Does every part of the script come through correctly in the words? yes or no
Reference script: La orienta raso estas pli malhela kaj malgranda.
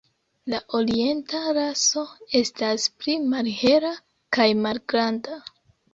yes